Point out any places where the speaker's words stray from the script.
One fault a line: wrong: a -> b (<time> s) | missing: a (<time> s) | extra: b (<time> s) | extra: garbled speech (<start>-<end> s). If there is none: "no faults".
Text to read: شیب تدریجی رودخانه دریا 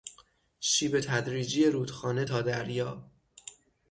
extra: تا (2.2 s)